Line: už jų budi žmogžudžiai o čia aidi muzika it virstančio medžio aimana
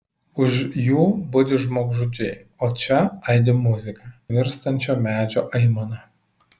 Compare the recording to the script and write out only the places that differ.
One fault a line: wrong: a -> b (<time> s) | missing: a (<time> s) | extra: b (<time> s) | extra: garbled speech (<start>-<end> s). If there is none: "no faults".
missing: it (4.1 s)